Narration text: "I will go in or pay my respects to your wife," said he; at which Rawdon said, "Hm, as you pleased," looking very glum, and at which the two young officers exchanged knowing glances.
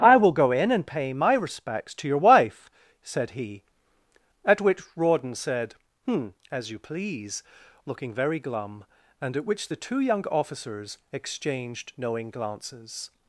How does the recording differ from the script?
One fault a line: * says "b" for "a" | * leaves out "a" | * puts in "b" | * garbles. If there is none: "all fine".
* says "and" for "or"
* says "please" for "pleased"